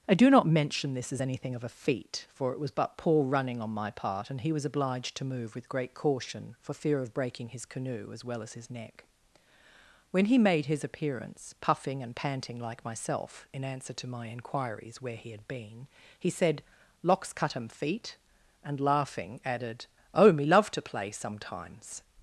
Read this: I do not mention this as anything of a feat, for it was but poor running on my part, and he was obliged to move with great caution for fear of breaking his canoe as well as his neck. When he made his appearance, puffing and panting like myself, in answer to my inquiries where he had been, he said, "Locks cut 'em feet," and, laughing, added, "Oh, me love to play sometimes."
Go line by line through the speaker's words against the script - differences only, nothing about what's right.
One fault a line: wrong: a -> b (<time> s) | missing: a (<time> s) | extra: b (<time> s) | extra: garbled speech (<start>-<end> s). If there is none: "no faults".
no faults